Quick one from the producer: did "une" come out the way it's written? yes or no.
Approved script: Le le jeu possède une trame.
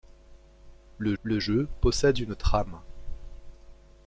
yes